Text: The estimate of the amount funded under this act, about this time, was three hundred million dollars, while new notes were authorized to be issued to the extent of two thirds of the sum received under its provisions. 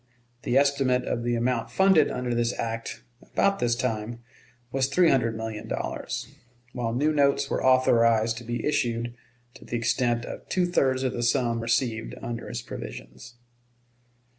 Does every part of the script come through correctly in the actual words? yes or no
yes